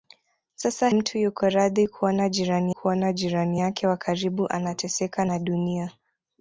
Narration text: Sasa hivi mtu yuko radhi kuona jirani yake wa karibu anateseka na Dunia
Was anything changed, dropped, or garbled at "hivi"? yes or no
yes